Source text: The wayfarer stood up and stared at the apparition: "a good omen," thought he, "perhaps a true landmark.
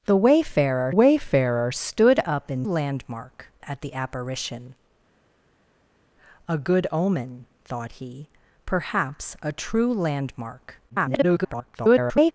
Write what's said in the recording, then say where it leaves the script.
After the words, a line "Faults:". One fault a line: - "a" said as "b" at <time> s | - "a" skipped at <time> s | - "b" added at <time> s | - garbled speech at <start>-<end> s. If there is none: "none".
The wayfarer wayfarer stood up and landmark at the apparition: "a good omen," thought he, "perhaps a true landmark. [garbled]
Faults:
- "wayfarer" added at 0.9 s
- "stared" said as "landmark" at 2.6 s
- garbled speech at 10.9-12.3 s